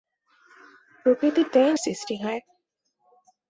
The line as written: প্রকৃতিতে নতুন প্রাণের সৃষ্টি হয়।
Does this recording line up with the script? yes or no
no